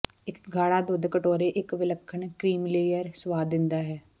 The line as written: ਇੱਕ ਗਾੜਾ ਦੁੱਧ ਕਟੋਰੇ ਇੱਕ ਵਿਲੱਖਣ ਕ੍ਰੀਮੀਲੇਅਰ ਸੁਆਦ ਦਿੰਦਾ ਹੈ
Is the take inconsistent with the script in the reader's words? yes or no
no